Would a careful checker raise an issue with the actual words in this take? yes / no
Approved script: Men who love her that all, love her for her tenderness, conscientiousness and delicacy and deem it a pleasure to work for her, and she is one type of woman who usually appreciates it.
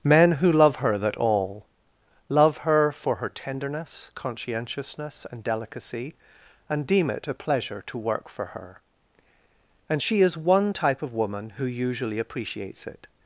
no